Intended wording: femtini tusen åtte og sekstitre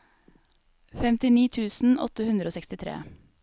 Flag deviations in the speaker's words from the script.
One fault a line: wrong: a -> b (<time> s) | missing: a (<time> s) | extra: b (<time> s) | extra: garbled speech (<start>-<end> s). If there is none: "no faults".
extra: hundre (2.3 s)